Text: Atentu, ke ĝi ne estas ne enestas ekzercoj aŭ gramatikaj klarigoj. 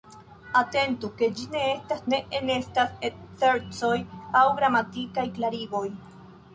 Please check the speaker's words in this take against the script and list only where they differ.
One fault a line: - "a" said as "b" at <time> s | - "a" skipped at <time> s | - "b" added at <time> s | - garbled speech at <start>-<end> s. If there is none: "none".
none